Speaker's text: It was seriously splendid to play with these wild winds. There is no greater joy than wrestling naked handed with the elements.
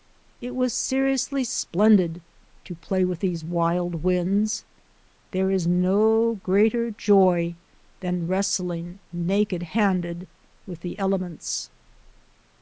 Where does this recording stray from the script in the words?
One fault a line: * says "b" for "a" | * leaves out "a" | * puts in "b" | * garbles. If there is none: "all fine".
all fine